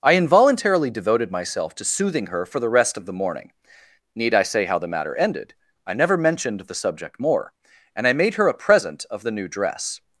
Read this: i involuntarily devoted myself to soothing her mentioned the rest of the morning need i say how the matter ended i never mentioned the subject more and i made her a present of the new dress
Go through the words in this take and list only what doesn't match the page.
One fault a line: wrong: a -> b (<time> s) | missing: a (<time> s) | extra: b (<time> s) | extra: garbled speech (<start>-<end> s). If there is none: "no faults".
wrong: mentioned -> for (2.5 s)